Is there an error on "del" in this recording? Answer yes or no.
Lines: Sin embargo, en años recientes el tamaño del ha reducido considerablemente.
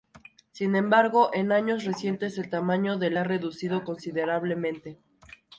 no